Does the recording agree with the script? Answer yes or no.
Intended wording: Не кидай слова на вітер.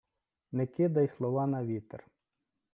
yes